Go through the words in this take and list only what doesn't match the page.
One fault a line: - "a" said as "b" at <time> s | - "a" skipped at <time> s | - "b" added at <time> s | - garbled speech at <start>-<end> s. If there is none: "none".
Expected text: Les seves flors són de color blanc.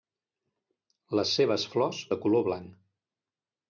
- "són" skipped at 2.0 s